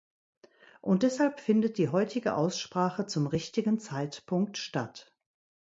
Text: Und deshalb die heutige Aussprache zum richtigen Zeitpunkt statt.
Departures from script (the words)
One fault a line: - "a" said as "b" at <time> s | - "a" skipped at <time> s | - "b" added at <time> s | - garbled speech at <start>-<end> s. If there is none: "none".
- "findet" added at 1.4 s